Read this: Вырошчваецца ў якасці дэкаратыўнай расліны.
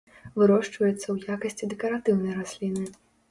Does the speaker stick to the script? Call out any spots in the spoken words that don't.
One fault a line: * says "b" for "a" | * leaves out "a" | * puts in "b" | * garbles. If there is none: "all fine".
all fine